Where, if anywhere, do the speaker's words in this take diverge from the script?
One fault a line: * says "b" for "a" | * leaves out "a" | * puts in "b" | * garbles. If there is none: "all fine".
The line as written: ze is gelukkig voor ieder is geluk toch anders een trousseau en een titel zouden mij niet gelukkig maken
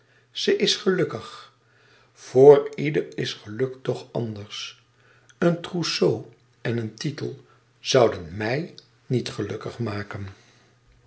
all fine